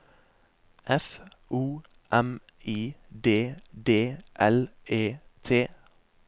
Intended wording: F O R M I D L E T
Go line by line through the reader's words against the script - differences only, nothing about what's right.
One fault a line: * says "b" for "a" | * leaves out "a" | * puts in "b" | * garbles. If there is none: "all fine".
* leaves out "R"
* puts in "D"